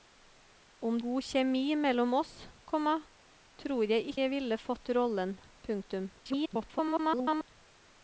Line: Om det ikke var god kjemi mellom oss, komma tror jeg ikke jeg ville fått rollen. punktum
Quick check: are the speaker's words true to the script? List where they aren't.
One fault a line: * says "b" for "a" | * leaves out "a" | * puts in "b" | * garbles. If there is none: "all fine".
* leaves out "det ikke var"
* leaves out "ikke"
* garbles